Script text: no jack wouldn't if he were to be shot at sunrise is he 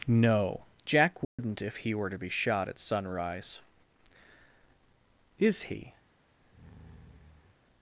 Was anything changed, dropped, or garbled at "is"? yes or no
no